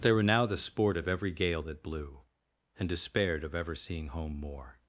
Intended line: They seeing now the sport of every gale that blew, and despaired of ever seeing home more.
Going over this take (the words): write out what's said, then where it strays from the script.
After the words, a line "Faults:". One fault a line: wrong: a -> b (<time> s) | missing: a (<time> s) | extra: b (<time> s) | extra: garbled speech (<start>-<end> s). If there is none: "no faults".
They were now the sport of every gale that blew, and despaired of ever seeing home more.
Faults:
wrong: seeing -> were (0.1 s)